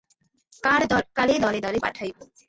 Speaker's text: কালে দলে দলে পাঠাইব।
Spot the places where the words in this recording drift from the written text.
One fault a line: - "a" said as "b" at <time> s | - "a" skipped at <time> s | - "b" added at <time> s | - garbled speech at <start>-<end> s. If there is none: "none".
none